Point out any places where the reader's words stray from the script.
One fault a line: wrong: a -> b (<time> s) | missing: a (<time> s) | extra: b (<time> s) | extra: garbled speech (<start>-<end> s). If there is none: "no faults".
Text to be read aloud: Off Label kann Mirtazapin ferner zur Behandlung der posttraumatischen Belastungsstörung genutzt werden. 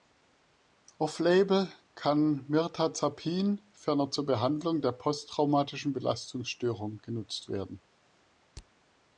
no faults